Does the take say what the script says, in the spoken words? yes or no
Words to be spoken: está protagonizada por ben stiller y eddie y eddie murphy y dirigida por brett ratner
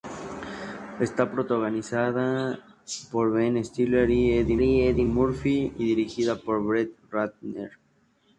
yes